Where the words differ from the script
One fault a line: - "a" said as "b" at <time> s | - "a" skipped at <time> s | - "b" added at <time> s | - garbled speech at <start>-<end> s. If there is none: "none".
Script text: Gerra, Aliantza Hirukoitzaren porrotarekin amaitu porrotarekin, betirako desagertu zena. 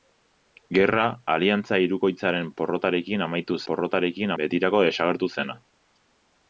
none